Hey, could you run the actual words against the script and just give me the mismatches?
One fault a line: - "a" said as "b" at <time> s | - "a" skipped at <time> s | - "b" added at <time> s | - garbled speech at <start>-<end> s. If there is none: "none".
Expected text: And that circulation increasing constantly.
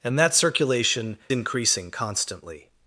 none